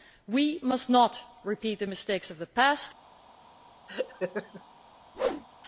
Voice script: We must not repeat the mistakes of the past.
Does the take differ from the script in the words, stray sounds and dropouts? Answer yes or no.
yes